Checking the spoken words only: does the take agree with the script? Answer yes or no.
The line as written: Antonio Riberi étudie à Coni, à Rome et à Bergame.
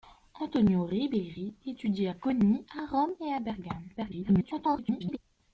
no